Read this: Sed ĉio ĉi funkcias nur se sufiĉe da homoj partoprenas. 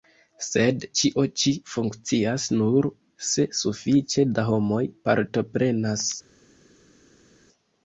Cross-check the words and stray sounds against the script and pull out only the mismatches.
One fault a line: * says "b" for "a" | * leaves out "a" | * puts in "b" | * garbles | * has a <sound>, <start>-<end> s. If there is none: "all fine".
all fine